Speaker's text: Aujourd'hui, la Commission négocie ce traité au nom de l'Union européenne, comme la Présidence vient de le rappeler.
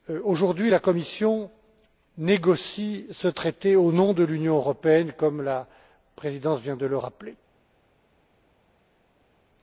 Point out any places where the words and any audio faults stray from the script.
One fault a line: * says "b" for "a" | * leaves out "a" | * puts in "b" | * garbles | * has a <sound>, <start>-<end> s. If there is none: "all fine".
all fine